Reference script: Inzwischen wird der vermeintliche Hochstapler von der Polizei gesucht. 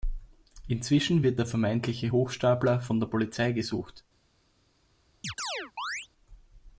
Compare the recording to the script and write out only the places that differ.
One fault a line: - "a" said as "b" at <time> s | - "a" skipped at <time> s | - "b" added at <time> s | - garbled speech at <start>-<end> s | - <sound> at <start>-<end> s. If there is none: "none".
- chirp at 5.2-6.1 s